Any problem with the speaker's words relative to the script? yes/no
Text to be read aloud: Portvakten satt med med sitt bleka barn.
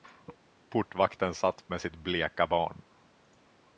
yes